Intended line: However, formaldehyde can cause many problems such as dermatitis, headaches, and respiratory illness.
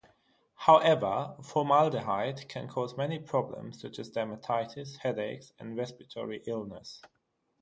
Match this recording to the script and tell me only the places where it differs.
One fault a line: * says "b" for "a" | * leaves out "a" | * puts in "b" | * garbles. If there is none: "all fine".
all fine